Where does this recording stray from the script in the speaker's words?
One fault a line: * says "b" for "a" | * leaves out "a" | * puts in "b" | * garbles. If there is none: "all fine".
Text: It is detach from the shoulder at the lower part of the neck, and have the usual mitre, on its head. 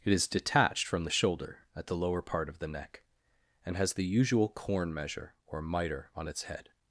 * says "detached" for "detach"
* says "has" for "have"
* puts in "corn measure or"